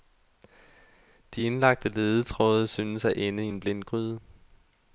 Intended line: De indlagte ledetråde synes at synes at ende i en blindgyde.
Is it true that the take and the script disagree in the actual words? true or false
true